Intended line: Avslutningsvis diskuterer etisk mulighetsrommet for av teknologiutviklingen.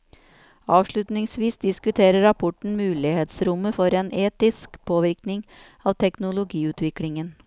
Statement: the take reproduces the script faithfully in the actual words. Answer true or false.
false